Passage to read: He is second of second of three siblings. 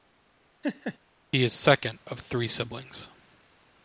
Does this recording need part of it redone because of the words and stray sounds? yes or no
yes